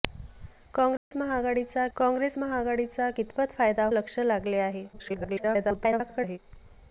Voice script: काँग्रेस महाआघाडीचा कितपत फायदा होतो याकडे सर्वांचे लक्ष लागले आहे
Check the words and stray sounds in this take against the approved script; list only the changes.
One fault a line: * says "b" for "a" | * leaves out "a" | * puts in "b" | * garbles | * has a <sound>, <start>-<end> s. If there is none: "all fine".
* has a dropout, 1.0-1.1 s
* puts in "काँग्रेस महाआघाडीचा"
* leaves out "होतो याकडे सर्वांचे"
* garbles